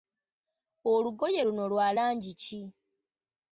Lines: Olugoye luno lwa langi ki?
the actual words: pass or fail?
pass